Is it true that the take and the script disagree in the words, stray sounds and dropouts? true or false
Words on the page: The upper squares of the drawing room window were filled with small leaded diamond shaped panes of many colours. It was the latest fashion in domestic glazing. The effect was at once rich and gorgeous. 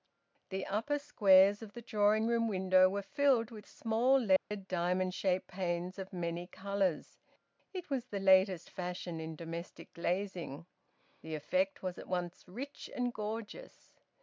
true